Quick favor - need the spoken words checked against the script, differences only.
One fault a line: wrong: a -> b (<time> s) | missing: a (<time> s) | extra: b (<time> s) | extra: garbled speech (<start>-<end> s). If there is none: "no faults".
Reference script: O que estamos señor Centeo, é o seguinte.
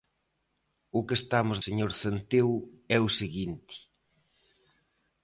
no faults